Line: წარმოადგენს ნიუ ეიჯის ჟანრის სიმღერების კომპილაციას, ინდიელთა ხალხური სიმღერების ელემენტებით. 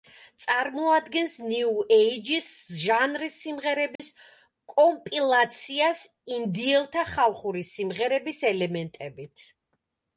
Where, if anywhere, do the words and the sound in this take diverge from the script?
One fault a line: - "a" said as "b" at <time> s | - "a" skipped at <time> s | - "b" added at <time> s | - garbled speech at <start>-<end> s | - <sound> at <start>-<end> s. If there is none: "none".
- dropout at 4.0-4.0 s